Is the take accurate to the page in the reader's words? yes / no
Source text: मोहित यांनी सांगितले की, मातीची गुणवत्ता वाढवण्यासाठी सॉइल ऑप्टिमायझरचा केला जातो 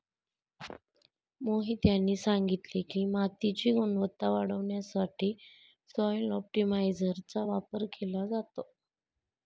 no